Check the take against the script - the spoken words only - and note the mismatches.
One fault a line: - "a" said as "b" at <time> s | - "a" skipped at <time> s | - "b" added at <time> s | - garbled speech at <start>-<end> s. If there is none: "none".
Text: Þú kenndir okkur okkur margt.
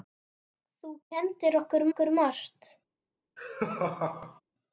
none